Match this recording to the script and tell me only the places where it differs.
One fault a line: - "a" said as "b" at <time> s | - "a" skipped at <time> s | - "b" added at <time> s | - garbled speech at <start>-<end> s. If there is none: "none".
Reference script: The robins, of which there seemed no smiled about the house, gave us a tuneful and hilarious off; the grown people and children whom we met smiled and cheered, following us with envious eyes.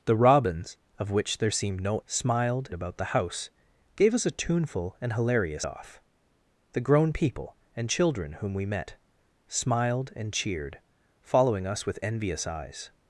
none